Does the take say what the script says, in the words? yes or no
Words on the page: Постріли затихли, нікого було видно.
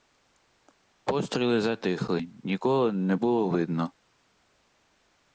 no